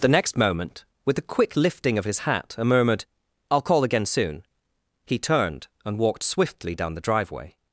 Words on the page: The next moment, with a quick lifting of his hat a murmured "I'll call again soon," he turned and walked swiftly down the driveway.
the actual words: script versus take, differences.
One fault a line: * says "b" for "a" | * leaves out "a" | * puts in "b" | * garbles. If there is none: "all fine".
all fine